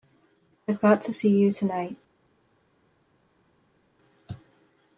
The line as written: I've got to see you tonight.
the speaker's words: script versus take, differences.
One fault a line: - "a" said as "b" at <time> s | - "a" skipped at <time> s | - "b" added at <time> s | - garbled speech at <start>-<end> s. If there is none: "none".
none